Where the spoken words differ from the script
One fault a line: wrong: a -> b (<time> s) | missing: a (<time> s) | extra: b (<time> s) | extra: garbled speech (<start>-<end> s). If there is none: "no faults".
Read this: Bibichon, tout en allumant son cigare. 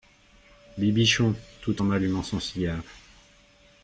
no faults